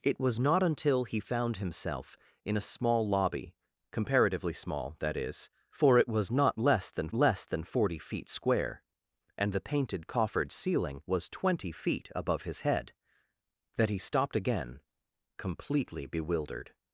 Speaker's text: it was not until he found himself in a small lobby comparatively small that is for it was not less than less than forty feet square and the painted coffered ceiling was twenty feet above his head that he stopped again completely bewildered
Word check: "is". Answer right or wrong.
right